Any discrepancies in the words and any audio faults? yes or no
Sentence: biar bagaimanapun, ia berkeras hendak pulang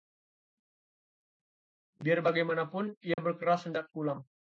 yes